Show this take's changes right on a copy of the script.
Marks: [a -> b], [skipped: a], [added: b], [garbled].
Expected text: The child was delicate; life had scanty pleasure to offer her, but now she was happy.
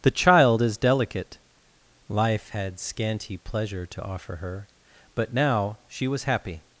The child [was -> is] delicate; life had scanty pleasure to offer her, but now she was happy.